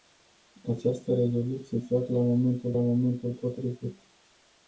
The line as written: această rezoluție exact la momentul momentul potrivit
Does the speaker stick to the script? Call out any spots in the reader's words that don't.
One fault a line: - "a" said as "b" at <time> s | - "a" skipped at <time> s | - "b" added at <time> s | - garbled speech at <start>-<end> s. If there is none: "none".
none